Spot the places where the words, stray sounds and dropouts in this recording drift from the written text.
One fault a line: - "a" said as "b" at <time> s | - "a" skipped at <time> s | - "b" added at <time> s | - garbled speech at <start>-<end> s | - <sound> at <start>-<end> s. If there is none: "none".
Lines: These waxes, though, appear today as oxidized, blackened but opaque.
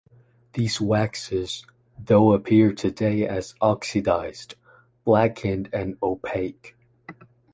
- "but" said as "and" at 5.7 s